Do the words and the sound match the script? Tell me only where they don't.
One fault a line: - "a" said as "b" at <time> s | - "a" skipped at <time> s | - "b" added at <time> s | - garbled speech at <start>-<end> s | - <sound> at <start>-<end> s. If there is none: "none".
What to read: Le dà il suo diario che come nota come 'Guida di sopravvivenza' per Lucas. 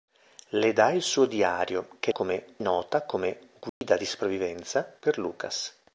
- dropout at 3.7-3.8 s